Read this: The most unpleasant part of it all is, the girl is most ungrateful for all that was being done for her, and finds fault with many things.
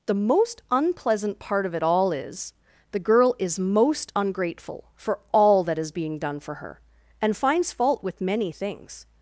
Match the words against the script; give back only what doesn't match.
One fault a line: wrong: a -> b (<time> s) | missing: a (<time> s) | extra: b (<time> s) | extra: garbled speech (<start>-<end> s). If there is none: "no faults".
wrong: was -> is (5.8 s)